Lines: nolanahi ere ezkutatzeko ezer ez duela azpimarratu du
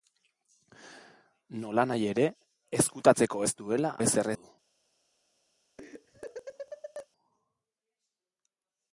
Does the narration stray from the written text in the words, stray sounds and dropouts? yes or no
yes